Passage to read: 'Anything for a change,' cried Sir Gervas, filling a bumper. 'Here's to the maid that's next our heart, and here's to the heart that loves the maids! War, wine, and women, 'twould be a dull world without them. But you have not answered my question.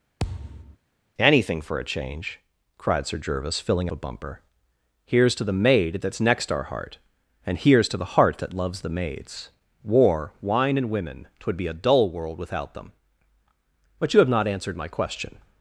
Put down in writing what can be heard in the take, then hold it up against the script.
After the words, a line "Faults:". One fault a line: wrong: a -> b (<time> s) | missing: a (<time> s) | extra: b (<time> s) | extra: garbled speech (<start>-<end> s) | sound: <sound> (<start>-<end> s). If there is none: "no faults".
'Anything for a change,' cried Sir Gervas, filling a bumper. 'Here's to the maid that's next our heart, and here's to the heart that loves the maids! War, wine, and women, 'twould be a dull world without them. But you have not answered my question.
Faults:
sound: thud (0.2-0.8 s)